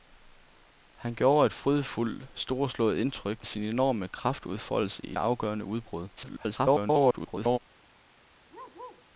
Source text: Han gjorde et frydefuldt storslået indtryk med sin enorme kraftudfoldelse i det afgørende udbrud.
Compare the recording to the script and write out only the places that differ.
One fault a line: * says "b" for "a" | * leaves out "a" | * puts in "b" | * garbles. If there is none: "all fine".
* leaves out "med"
* leaves out "det"
* garbles